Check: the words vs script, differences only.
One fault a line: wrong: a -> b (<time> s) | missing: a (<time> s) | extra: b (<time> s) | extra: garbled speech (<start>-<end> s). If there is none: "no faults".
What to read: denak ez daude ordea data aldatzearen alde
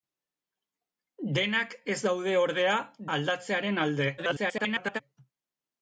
missing: data (2.7 s)
extra: garbled speech (4.2-5.0 s)